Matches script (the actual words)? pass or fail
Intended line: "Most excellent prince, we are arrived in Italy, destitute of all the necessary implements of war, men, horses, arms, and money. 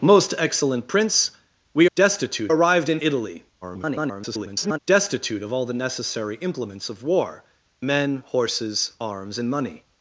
fail